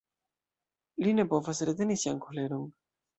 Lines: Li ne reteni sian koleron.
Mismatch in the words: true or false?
true